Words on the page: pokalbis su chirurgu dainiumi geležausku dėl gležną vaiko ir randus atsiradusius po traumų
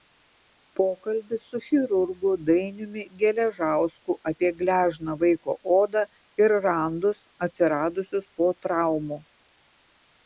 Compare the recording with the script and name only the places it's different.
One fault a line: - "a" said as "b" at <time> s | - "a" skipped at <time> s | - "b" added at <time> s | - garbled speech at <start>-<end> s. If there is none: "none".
- "dėl" said as "apie" at 4.3 s
- "odą" added at 5.8 s